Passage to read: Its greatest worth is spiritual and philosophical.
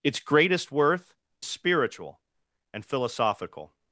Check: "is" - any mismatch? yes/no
yes